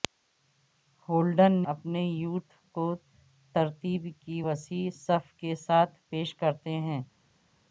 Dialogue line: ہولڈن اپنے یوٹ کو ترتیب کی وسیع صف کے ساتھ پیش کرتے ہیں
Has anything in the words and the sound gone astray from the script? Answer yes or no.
no